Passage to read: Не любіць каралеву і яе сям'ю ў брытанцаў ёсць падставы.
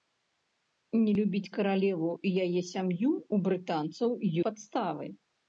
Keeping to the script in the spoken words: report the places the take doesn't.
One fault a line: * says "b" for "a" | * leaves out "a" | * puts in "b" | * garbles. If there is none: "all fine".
* leaves out "ёсць"